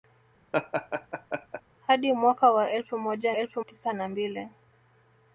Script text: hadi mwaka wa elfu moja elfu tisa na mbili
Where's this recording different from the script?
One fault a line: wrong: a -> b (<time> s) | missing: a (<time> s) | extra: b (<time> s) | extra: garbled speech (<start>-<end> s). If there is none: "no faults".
no faults